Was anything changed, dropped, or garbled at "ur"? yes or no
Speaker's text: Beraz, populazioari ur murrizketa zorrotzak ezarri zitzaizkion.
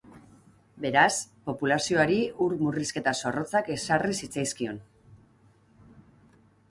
no